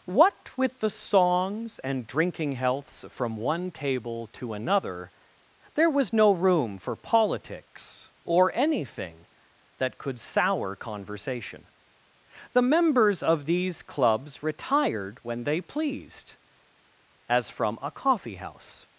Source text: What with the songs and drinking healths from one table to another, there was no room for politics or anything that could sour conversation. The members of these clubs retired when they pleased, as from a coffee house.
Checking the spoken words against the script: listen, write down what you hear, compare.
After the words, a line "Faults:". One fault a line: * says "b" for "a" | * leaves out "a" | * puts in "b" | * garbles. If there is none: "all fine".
What with the songs and drinking healths from one table to another, there was no room for politics or anything that could sour conversation. The members of these clubs retired when they pleased, as from a coffee house.
Faults:
all fine